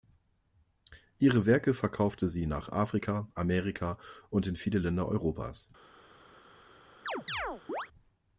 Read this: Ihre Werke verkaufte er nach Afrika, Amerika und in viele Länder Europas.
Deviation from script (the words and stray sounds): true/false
true